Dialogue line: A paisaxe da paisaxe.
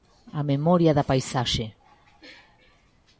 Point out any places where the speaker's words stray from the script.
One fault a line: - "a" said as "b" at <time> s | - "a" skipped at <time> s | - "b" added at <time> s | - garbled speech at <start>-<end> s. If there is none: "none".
- "paisaxe" said as "memoria" at 0.4 s